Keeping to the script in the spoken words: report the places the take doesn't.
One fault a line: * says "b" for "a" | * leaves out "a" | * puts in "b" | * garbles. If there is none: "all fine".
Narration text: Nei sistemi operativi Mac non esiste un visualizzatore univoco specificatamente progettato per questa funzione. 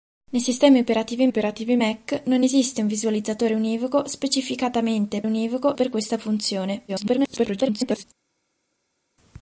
* puts in "operativi"
* says "univoco" for "progettato"
* garbles